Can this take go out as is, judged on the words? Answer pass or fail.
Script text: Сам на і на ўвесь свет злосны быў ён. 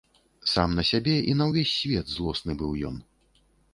fail